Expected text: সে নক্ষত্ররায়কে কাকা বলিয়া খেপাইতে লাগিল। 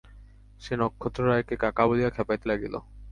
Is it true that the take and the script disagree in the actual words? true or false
false